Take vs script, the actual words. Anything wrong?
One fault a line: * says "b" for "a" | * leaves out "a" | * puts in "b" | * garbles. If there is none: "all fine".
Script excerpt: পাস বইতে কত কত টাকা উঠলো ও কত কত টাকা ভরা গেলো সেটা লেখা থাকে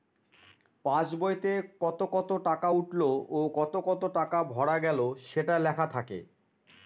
all fine